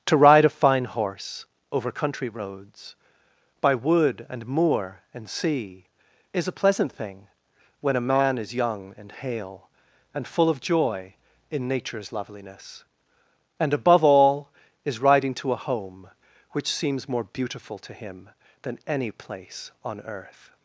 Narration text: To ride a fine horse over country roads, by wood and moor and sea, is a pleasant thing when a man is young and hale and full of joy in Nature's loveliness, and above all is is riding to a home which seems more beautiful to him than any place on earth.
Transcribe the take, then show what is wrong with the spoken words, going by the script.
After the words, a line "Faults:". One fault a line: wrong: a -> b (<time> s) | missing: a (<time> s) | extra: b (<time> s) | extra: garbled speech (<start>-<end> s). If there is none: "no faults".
To ride a fine horse over country roads, by wood and moor and sea, is a pleasant thing when a man is young and hale and full of joy in Nature's loveliness, and above all is riding to a home which seems more beautiful to him than any place on earth.
Faults:
missing: is (15.0 s)